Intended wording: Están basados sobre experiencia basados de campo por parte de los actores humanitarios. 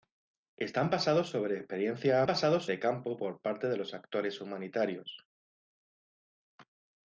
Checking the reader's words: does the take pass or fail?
pass